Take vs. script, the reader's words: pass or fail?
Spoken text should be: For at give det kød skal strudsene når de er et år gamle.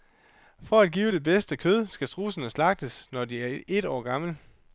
fail